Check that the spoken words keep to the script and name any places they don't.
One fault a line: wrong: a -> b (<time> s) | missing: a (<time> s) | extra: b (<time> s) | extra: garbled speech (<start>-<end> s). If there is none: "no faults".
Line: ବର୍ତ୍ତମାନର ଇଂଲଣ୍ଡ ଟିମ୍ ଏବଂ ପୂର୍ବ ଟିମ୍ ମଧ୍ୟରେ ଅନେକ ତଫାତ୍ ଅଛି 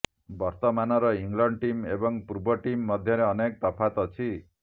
no faults